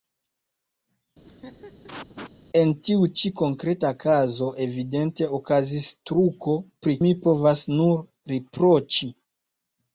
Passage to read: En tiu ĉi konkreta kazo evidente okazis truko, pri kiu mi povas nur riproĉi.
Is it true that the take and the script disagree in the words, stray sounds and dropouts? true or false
true